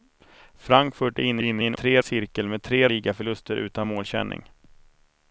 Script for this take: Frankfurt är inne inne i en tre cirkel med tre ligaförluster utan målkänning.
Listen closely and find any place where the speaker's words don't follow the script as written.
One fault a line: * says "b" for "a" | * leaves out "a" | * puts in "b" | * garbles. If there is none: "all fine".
all fine